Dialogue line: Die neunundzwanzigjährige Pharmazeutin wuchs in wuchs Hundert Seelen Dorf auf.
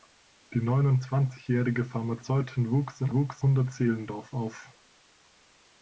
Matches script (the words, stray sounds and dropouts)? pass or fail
pass